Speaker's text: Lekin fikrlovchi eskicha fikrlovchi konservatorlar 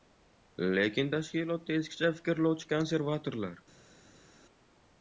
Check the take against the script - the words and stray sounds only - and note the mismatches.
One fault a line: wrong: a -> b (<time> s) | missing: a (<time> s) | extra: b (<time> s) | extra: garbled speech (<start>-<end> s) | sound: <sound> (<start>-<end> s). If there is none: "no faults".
wrong: fikrlovchi -> tashkilotda (1.1 s)